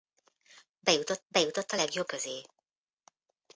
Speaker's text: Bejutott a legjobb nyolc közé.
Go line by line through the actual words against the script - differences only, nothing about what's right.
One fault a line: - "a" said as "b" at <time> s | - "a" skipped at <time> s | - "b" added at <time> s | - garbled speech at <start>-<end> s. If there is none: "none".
- "bejutott" added at 1.3 s
- "nyolc" skipped at 2.1 s